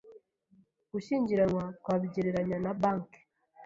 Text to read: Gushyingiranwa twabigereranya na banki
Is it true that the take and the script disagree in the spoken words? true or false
false